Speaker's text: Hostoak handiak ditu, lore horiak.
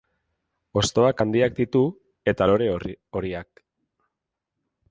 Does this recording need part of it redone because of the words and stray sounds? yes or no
yes